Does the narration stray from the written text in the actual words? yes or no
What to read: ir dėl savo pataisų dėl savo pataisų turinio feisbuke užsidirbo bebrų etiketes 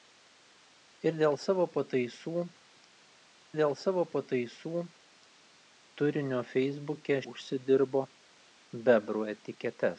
no